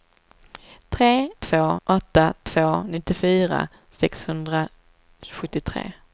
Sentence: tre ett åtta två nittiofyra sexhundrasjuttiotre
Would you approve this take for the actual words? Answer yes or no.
no